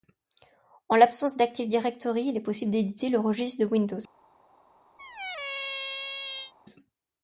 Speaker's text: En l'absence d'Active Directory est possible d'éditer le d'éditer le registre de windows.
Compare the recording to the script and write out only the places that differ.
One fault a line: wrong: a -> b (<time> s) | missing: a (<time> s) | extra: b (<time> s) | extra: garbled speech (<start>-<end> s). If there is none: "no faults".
extra: il (2.3 s)
missing: d'éditer le (3.2 s)